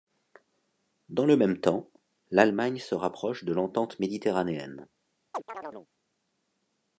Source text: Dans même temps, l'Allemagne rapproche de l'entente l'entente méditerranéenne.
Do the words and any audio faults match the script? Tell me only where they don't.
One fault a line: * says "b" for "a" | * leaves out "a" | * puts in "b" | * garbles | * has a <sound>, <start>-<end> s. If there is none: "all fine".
* puts in "le"
* puts in "se"
* leaves out "l'entente"
* has a chirp, 5.3-5.9 s